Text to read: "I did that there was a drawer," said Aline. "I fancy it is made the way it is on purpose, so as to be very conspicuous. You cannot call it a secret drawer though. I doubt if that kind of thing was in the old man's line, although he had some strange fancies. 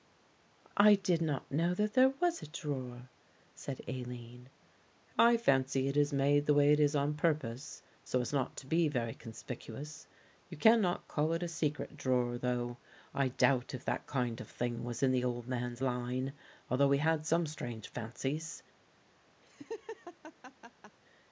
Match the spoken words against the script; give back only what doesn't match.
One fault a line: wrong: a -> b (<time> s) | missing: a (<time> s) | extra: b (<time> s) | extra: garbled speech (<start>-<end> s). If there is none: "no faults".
extra: not know (1.2 s)
extra: not (8.3 s)